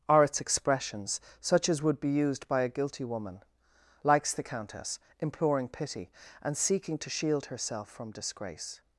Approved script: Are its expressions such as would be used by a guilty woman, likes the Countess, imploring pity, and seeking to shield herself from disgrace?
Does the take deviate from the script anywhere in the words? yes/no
no